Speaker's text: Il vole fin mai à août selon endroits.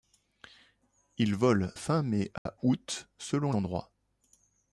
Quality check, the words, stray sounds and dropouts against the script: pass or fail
fail